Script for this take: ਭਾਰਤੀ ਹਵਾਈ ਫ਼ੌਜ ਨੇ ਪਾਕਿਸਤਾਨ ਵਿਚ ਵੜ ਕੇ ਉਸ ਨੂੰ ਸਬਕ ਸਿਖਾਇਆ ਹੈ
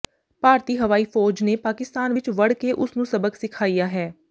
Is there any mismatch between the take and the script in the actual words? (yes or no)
no